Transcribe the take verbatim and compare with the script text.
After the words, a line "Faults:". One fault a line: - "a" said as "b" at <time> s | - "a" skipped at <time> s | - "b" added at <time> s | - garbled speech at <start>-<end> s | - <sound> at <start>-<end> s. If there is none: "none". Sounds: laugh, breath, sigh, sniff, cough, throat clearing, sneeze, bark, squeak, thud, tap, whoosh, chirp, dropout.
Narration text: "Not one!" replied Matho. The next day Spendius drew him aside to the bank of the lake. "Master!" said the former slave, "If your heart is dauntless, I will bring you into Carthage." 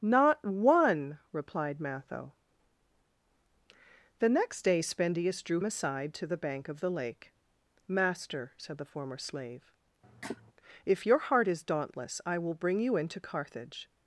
"Not one!" replied Matho. The next day Spendius drew aside to the bank of the lake. "Master!" said the former slave, "If your heart is dauntless, I will bring you into Carthage."
Faults:
- "him" skipped at 5.6 s
- cough at 10.0-10.5 s